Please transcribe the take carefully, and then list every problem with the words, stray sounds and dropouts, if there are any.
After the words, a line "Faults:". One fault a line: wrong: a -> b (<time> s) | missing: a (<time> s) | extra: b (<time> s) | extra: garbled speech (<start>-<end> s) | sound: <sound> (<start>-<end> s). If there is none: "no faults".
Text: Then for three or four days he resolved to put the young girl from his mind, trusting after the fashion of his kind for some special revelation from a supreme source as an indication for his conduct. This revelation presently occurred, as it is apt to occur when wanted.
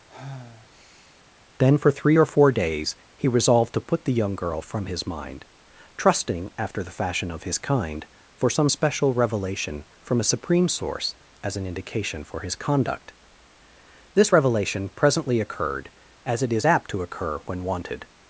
Then for three or four days he resolved to put the young girl from his mind, trusting after the fashion of his kind for some special revelation from a supreme source as an indication for his conduct. This revelation presently occurred, as it is apt to occur when wanted.
Faults:
sound: sigh (0.1-1.2 s)